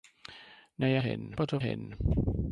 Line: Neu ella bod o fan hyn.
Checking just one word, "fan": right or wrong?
wrong